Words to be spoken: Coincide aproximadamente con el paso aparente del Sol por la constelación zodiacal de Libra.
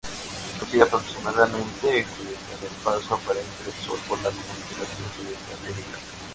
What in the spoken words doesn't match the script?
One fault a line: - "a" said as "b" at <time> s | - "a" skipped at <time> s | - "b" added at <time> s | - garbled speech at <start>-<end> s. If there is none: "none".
- "con" said as "zodiacal" at 2.2 s